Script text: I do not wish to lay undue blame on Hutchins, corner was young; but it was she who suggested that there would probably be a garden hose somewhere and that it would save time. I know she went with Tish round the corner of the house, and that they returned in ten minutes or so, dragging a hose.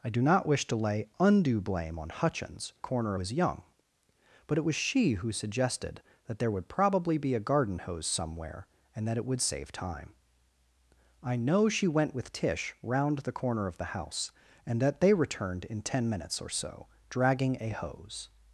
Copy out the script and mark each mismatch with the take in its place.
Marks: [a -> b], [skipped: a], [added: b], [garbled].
I do not wish to lay undue blame on Hutchins, corner was young; but it was she who suggested that there would probably be a garden hose somewhere and that it would save time. I know she went with Tish round the corner of the house, and that they returned in ten minutes or so, dragging a hose.